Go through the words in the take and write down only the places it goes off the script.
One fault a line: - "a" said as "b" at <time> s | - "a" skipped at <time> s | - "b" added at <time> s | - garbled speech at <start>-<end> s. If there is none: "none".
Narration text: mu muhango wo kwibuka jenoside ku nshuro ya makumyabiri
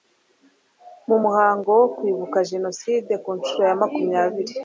none